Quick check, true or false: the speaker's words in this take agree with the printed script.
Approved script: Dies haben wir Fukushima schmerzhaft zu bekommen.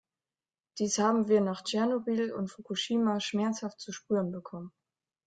false